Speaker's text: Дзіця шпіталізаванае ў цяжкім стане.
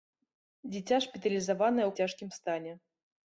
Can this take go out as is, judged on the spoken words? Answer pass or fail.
pass